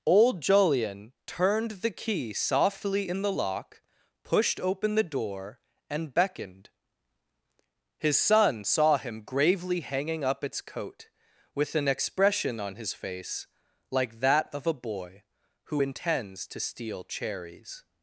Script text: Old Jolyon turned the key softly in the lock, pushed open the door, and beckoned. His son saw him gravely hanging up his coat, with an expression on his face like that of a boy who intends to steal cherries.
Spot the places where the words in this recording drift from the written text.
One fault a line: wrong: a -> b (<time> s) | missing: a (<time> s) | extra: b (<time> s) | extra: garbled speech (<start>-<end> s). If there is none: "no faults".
wrong: his -> its (10.4 s)